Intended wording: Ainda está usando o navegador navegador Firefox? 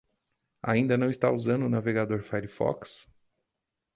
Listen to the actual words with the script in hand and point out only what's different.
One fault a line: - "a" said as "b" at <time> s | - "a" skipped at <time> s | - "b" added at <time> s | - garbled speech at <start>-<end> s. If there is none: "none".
- "não" added at 1.0 s
- "navegador" skipped at 2.2 s